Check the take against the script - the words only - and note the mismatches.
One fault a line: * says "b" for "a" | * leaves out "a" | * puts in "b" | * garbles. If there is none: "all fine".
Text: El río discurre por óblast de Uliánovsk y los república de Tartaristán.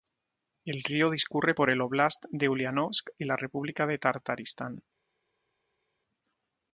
* puts in "el"
* says "la" for "los"